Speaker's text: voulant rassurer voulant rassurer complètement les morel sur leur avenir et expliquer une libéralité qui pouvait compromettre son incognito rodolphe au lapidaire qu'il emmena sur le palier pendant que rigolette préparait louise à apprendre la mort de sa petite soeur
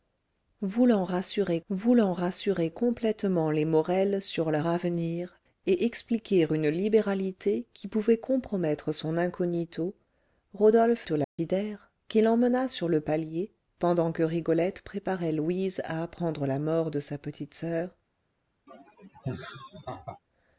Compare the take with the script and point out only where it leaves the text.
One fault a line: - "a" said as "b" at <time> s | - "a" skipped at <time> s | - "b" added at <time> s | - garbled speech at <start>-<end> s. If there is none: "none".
none